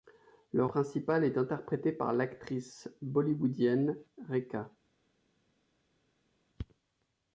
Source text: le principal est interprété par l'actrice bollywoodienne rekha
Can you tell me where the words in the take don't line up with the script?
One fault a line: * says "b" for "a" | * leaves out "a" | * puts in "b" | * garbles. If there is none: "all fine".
all fine